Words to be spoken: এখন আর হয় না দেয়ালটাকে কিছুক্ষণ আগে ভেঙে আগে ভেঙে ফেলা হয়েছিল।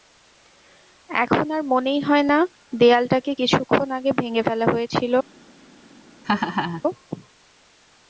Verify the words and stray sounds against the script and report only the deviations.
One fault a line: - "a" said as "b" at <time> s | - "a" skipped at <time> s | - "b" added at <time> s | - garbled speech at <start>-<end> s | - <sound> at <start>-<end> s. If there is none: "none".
- "মনেই" added at 1.7 s
- "আগে ভেঙে" skipped at 4.4 s
- laugh at 6.2-6.8 s